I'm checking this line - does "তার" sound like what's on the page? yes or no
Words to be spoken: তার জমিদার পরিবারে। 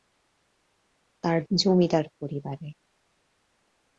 yes